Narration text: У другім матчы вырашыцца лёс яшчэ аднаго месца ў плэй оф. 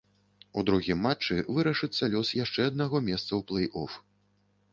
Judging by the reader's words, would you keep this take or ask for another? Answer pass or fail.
pass